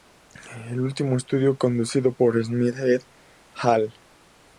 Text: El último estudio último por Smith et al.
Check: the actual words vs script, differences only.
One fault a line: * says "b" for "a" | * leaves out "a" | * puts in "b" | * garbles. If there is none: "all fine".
* says "conducido" for "último"